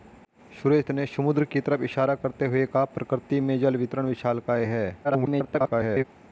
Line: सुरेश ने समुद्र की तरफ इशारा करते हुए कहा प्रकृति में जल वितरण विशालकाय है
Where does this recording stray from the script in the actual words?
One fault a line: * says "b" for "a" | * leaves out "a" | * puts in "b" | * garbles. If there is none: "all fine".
* garbles